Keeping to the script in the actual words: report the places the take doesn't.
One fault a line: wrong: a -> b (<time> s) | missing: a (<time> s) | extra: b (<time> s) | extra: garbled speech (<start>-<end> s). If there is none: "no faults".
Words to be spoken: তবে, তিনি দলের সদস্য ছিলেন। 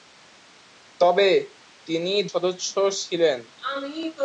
missing: দলের (2.2 s)